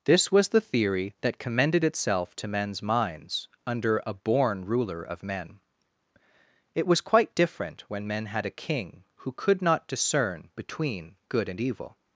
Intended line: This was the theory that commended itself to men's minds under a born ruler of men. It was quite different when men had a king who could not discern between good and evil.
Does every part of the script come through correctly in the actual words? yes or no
yes